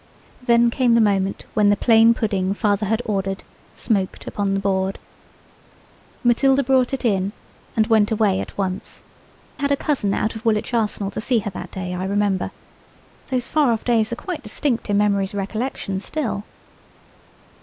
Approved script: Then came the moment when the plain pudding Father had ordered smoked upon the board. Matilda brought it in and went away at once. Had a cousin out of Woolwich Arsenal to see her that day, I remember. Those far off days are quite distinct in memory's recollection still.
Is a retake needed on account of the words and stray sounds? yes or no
no